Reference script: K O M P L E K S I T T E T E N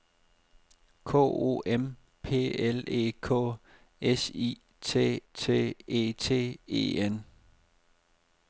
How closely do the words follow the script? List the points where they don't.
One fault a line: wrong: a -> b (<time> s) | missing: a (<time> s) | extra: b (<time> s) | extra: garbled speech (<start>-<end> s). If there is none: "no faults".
no faults